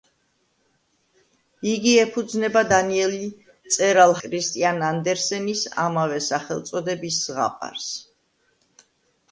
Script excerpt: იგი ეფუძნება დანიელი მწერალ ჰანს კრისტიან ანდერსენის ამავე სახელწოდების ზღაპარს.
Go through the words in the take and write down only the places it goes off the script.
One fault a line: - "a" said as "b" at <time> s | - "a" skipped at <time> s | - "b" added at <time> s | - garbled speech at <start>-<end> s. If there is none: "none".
- "ჰანს" skipped at 4.1 s